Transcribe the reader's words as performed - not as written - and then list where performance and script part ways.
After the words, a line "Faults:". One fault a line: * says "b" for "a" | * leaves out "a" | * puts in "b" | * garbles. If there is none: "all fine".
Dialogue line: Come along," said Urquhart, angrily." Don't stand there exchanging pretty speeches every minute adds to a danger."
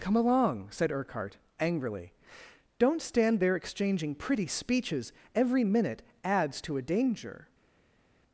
Come along," said Urquhart, angrily." Don't stand there exchanging pretty speeches every minute adds to a danger."
Faults:
all fine